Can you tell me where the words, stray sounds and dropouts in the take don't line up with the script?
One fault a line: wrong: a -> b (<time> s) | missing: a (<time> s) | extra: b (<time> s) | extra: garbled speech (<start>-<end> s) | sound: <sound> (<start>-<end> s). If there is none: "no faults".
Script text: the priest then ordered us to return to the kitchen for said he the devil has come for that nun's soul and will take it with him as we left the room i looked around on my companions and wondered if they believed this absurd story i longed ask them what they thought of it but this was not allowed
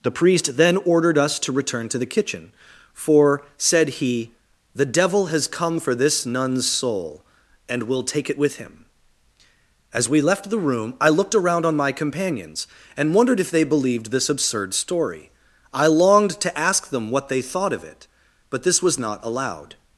wrong: that -> this (5.9 s)
extra: to (16.4 s)